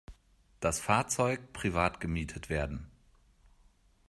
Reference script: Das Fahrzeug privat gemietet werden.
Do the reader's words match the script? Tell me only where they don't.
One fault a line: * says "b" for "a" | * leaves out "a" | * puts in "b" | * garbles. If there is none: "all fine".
all fine